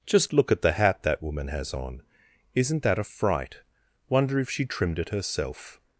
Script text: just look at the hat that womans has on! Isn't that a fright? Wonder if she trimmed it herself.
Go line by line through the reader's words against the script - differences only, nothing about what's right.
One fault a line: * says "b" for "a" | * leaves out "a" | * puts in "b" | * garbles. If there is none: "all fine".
* says "woman" for "womans"